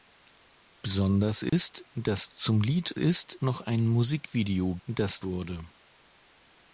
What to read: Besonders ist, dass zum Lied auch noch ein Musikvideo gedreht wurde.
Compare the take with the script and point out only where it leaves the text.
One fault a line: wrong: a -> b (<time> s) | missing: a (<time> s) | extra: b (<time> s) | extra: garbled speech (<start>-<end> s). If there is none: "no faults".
wrong: auch -> ist (3.0 s)
wrong: gedreht -> dass (4.8 s)